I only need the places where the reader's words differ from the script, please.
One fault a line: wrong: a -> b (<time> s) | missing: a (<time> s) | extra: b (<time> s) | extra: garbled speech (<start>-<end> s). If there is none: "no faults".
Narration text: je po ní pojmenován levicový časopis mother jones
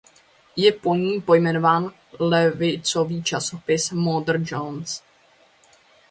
no faults